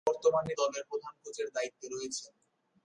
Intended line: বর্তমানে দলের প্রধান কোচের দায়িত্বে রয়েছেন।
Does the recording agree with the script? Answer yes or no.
yes